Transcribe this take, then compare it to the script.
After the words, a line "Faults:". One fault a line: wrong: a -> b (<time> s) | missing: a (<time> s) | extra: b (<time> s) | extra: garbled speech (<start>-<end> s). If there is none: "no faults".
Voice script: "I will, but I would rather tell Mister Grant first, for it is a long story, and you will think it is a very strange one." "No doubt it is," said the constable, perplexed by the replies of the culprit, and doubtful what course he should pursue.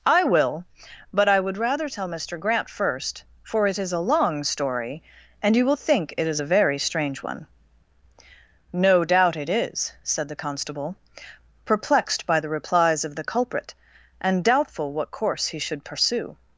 "I will, but I would rather tell Mister Grant first, for it is a long story, and you will think it is a very strange one." "No doubt it is," said the constable, perplexed by the replies of the culprit, and doubtful what course he should pursue.
Faults:
no faults